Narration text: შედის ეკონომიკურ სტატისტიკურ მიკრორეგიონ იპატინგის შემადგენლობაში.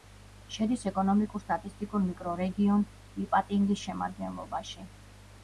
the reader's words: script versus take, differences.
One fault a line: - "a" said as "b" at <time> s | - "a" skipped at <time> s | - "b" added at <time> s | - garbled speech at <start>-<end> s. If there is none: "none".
none